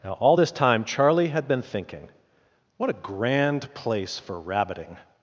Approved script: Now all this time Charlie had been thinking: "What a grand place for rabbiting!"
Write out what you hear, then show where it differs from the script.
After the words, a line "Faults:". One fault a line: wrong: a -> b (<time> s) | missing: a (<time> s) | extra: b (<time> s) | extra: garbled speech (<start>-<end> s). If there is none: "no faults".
Now all this time Charlie had been thinking: "What a grand place for rabbiting!"
Faults:
no faults